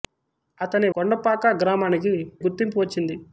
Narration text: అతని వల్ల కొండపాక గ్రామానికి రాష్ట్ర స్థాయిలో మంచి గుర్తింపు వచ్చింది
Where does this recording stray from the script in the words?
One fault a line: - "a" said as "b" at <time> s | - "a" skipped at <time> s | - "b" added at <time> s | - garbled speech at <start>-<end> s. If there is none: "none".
- "వల్ల" skipped at 0.9 s
- "రాష్ట్ర స్థాయిలో మంచి" skipped at 2.1 s